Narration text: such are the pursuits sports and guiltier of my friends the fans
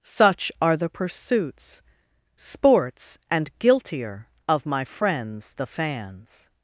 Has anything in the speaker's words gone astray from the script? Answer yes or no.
no